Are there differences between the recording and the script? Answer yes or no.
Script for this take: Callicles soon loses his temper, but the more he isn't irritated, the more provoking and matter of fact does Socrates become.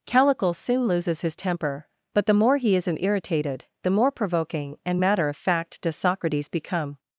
no